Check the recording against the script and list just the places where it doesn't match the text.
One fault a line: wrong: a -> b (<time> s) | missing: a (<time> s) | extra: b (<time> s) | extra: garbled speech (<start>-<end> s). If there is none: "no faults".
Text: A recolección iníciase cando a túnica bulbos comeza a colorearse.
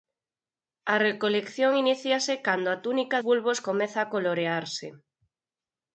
no faults